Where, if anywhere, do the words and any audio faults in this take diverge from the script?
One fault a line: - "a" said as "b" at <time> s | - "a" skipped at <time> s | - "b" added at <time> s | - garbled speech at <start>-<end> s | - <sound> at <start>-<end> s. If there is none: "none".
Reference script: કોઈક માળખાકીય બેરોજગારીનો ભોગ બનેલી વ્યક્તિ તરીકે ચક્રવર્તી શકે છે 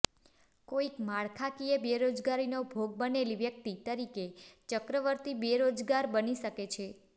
- "બેરોજગાર બની" added at 5.4 s